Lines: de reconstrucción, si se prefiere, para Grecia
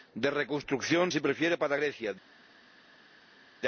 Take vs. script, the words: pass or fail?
fail